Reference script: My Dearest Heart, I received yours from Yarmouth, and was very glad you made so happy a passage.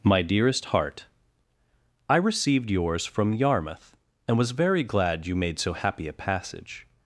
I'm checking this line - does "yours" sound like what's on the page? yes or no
yes